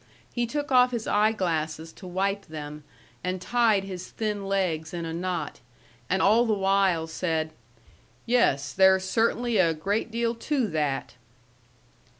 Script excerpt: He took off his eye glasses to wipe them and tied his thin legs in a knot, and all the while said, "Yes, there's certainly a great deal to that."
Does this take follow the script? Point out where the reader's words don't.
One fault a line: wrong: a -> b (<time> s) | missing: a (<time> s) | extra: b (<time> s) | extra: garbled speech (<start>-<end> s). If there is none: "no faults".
no faults